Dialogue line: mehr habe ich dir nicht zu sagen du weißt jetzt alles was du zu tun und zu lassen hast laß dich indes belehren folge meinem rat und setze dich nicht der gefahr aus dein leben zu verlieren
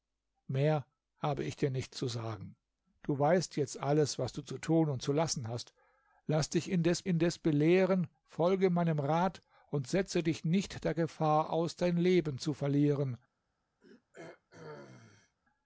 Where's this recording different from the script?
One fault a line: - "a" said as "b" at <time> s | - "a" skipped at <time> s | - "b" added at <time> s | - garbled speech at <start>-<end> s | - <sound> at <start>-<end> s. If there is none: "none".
- "indes" added at 7.1 s
- throat clearing at 13.8-15.4 s